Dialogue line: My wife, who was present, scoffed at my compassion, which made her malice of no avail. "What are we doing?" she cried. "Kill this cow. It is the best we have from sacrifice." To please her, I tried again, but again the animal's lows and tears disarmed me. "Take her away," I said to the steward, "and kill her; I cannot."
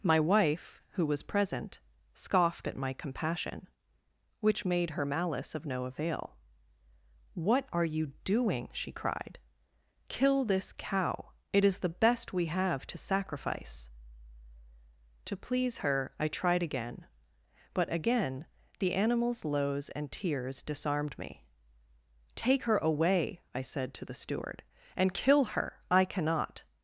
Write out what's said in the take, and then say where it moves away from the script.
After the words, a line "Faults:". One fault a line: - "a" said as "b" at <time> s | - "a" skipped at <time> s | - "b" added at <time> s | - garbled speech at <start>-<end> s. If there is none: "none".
My wife, who was present, scoffed at my compassion, which made her malice of no avail. "What are you doing?" she cried. "Kill this cow. It is the best we have to sacrifice." To please her, I tried again, but again the animal's lows and tears disarmed me. "Take her away," I said to the steward, "and kill her; I cannot."
Faults:
- "we" said as "you" at 7.8 s
- "from" said as "to" at 12.9 s